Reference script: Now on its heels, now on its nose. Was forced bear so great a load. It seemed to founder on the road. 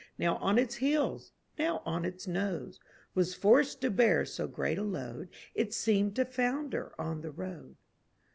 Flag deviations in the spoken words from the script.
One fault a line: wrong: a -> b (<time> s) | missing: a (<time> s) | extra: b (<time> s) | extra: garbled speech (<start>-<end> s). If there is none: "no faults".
extra: to (3.8 s)